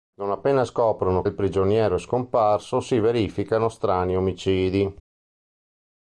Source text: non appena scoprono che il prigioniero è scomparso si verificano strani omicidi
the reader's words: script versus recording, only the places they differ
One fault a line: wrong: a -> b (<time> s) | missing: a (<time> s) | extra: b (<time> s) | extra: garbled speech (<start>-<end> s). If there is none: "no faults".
missing: che (1.2 s)